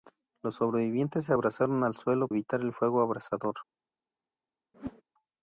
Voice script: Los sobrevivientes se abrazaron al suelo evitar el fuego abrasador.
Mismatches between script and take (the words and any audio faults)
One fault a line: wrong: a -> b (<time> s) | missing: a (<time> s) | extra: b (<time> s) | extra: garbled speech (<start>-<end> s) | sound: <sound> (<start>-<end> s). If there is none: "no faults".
sound: whoosh (4.7-5.0 s)